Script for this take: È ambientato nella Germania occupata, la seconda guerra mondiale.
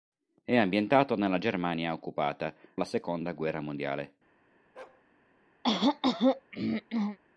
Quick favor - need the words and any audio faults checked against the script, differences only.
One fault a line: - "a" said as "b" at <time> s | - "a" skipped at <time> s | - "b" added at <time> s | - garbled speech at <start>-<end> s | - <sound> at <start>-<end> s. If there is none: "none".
- bark at 4.8-5.0 s
- throat clearing at 5.6-7.2 s